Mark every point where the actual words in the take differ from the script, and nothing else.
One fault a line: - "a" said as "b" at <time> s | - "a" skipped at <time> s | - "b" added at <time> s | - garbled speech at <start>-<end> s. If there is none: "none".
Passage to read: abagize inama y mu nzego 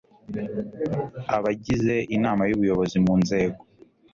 - "ubuyobozi" added at 2.5 s